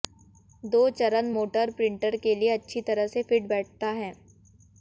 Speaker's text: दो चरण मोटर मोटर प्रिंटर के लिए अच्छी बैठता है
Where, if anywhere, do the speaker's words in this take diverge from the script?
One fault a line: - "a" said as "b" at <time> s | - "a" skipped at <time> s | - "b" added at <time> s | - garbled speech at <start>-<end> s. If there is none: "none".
- "मोटर" skipped at 1.7 s
- "तरह से फिट" added at 2.8 s